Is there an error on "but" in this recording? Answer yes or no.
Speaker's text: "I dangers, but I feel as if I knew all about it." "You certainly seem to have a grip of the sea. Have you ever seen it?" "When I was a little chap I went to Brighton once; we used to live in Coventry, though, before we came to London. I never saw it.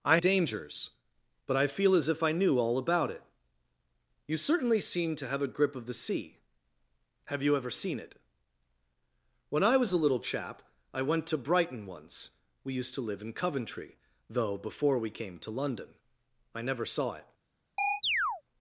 no